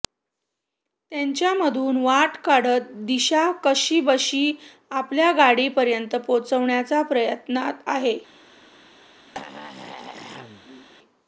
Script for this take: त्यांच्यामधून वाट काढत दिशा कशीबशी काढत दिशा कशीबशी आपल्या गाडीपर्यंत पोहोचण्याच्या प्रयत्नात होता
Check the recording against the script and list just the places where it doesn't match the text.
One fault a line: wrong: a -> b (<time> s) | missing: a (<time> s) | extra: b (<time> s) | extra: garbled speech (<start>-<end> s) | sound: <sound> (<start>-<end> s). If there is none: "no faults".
missing: काढत दिशा कशीबशी (4.5 s)
wrong: होता -> आहे (7.9 s)
sound: throat clearing (9.3-10.9 s)